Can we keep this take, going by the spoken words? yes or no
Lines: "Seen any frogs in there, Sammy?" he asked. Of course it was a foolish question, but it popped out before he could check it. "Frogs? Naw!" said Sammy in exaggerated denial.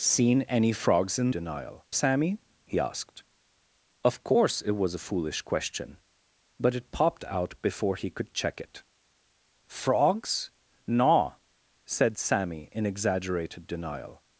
no